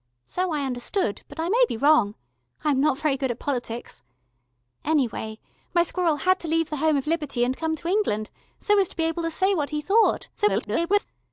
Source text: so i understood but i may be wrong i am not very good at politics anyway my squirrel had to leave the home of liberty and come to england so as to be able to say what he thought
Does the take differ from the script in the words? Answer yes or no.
yes